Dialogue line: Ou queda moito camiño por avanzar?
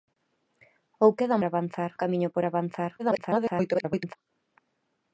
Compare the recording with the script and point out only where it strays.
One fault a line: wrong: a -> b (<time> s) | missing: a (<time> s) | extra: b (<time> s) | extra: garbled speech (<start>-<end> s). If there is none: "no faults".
wrong: moito -> avanzar (1.4 s)
extra: garbled speech (3.0-4.2 s)